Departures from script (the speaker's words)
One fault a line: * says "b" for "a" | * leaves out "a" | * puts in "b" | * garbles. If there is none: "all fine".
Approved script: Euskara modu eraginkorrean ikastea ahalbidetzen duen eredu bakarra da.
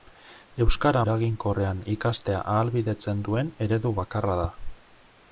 * leaves out "modu"